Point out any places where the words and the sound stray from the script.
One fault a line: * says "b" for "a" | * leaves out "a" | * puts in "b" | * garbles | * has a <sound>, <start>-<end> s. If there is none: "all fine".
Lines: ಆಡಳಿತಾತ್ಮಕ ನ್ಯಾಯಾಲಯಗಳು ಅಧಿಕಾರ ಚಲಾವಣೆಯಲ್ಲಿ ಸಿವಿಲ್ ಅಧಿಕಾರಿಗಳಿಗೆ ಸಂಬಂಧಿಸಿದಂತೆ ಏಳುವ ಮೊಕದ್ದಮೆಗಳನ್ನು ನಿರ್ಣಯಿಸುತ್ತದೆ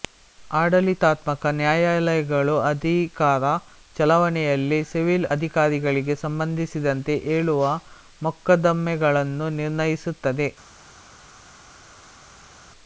all fine